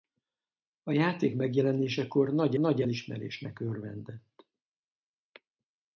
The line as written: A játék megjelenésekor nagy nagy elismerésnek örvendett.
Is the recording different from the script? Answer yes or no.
no